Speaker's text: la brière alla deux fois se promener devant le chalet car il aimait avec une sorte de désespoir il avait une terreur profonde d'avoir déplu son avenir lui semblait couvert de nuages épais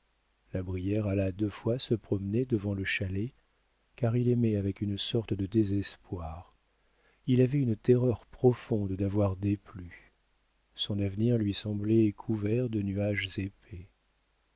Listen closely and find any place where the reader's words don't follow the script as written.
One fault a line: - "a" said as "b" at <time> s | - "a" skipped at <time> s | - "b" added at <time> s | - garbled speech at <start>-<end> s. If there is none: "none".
none